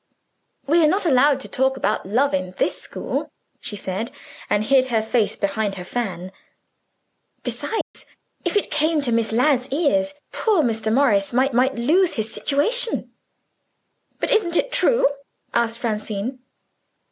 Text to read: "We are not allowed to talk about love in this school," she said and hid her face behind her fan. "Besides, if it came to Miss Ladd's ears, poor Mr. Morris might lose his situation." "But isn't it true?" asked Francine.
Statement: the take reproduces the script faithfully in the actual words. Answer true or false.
false